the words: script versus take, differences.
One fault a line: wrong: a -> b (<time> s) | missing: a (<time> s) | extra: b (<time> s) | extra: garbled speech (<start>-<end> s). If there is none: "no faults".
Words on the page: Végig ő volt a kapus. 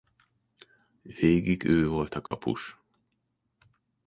no faults